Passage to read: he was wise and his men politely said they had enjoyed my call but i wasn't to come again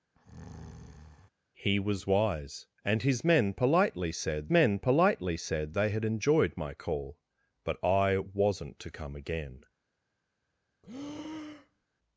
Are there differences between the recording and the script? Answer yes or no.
yes